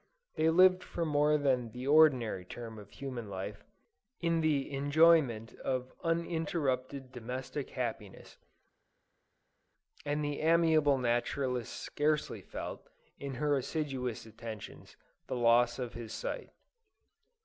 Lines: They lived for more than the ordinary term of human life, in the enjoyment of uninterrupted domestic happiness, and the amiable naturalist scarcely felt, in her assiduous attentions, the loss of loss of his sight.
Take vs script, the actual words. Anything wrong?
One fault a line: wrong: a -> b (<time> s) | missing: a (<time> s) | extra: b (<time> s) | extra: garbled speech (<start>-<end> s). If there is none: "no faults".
missing: loss of (15.9 s)